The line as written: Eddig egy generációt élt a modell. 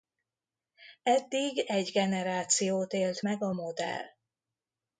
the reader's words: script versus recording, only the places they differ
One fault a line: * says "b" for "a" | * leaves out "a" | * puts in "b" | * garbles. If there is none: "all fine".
* puts in "meg"